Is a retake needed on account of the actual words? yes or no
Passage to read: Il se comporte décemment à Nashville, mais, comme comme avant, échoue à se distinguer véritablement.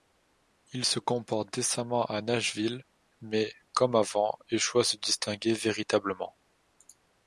yes